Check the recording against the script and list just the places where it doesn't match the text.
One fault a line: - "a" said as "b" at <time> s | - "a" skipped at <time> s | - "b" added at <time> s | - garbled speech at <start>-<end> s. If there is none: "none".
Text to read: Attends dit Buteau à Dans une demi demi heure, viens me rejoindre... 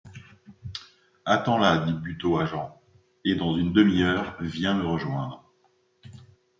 - "là" added at 1.6 s
- "Jean et" added at 2.5 s
- "demi" skipped at 4.0 s